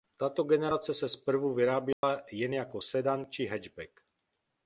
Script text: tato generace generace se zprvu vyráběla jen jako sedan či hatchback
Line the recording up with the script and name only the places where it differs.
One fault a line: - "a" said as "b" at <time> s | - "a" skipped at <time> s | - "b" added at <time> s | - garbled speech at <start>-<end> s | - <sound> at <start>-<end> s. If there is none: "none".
- "generace" skipped at 0.9 s
- dropout at 1.9-2.0 s